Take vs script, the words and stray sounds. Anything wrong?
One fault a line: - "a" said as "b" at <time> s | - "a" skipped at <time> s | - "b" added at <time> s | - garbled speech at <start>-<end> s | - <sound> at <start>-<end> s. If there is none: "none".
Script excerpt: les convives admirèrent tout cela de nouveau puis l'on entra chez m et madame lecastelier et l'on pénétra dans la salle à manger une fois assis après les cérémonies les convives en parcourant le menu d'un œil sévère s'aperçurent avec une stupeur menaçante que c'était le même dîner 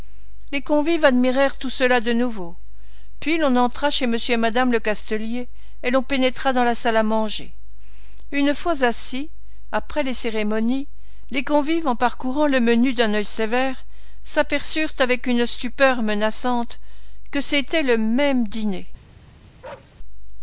- bark at 19.6-20.0 s